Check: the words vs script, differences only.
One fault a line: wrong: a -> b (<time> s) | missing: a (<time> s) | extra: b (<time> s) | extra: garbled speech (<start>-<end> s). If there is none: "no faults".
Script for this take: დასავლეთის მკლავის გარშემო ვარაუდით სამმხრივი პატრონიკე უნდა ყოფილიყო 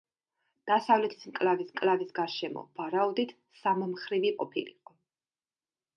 extra: მკლავის (1.7 s)
missing: პატრონიკე უნდა (4.3 s)